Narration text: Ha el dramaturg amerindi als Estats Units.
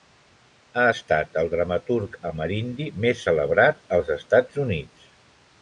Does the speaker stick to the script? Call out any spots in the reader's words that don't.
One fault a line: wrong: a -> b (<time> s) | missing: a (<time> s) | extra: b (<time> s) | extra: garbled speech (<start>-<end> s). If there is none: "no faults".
extra: estat (0.9 s)
extra: més celebrat (3.1 s)